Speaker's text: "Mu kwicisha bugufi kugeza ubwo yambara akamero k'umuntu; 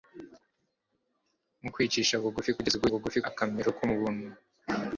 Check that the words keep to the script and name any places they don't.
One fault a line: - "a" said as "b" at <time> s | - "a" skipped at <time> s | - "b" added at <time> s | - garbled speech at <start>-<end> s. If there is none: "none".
- "yambara" said as "bugufi" at 2.9 s